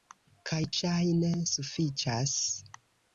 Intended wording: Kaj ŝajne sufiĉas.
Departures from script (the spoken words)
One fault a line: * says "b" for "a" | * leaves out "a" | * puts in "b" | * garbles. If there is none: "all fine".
all fine